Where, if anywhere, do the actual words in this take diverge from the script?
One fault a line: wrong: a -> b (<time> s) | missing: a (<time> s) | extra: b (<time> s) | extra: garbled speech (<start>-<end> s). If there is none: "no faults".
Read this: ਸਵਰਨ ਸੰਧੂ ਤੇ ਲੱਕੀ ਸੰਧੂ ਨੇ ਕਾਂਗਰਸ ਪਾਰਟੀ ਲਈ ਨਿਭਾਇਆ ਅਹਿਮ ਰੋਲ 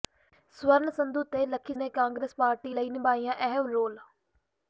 missing: ਸੰਧੂ (1.7 s)